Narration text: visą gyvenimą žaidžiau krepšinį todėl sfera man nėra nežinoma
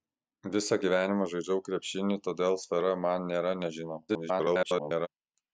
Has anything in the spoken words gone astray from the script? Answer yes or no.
yes